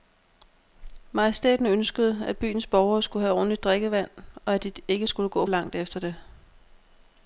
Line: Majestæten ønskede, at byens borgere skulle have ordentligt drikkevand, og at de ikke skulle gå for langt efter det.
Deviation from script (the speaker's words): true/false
true